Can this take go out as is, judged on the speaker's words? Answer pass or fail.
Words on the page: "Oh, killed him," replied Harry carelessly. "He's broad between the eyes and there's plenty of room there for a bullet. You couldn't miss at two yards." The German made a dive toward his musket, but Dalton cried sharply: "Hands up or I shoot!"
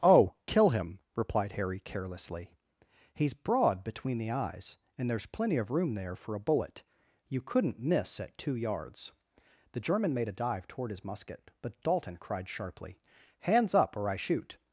fail